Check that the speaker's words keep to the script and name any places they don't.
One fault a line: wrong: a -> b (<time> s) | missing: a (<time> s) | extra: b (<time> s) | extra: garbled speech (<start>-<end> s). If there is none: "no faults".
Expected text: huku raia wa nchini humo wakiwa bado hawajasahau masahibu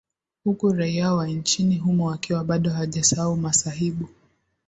no faults